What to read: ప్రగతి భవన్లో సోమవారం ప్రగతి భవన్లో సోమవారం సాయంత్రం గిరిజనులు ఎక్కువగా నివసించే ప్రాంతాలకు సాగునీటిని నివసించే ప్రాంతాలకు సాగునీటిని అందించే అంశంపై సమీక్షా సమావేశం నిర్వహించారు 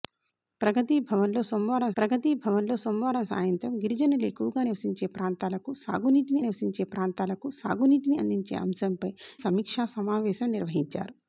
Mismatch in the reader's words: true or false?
false